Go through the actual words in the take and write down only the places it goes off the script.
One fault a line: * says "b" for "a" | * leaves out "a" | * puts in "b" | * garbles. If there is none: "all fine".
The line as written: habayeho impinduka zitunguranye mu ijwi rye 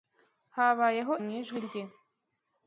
* leaves out "impinduka zitunguranye"